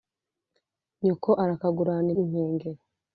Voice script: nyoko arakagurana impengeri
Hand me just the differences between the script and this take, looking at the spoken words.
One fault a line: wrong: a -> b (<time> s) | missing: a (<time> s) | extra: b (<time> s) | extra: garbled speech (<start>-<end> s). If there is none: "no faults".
no faults